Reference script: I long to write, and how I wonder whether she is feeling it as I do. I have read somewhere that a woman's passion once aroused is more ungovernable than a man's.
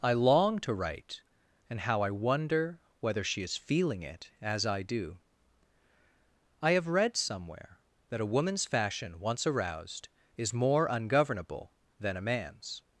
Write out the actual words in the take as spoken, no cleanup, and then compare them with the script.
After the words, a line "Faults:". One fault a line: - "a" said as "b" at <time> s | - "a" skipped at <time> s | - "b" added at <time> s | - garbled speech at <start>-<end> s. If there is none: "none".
I long to write, and how I wonder whether she is feeling it as I do. I have read somewhere that a woman's fashion once aroused is more ungovernable than a man's.
Faults:
- "passion" said as "fashion" at 8.7 s